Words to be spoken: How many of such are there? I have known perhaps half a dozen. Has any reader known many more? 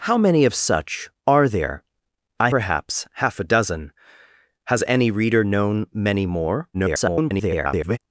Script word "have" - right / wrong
wrong